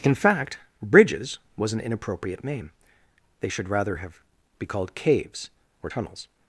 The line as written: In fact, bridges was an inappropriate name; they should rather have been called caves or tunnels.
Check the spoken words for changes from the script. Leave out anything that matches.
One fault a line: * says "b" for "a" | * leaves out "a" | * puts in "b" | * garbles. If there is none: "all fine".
* says "be" for "been"